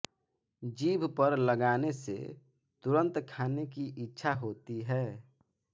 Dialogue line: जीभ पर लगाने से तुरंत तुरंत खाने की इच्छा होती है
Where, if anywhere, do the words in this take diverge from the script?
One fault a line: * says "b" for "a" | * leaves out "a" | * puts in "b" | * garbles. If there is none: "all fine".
* leaves out "तुरंत"